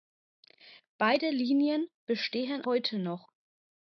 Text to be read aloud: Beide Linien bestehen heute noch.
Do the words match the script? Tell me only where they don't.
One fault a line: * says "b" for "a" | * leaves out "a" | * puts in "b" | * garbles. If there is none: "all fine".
all fine